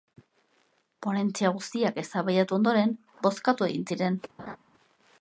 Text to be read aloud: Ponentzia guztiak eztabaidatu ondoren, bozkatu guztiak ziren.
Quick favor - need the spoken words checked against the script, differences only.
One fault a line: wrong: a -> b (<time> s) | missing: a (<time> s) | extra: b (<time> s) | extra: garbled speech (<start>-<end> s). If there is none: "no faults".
wrong: guztiak -> egin (3.7 s)